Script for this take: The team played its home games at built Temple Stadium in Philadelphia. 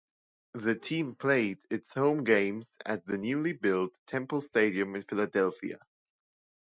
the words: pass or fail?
fail